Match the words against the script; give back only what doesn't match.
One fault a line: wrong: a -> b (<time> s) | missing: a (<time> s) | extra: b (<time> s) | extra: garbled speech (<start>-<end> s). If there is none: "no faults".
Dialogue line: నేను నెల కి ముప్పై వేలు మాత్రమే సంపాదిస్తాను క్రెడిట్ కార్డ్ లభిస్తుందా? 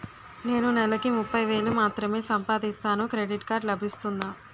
no faults